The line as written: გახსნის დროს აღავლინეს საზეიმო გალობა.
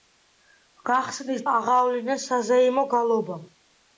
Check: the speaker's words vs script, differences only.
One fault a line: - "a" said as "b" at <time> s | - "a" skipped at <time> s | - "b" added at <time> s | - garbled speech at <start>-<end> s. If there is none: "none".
- "დროს" skipped at 1.4 s